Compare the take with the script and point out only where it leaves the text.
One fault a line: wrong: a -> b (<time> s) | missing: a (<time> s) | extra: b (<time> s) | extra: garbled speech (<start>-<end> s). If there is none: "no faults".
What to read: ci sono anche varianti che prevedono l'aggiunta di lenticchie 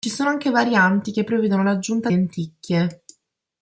missing: di (2.1 s)